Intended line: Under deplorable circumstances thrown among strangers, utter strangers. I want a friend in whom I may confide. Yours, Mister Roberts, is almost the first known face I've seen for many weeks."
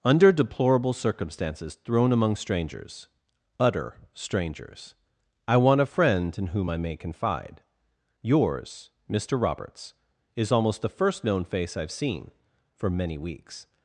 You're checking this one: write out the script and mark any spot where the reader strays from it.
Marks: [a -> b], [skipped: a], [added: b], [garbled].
Under deplorable circumstances thrown among strangers, utter strangers. I want a friend in whom I may confide. Yours, Mister Roberts, is almost the first known face I've seen for many weeks."